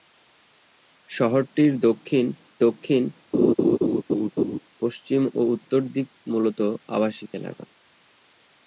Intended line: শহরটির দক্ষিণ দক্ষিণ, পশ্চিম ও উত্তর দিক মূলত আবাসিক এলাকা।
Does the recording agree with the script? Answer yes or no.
yes